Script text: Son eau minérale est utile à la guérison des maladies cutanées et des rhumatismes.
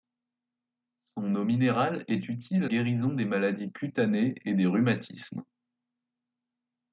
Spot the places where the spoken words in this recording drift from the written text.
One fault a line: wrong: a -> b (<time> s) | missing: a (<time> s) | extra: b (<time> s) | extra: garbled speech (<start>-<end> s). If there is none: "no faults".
missing: la (2.7 s)